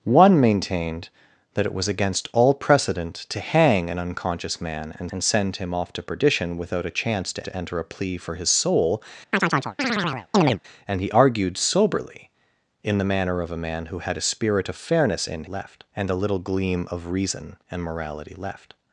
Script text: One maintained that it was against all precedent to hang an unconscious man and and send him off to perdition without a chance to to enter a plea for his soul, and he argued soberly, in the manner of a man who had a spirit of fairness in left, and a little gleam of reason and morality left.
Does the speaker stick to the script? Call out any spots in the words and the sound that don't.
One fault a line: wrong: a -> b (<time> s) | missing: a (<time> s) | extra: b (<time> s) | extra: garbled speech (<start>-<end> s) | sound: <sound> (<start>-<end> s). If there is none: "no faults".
sound: chirp (9.3-10.6 s)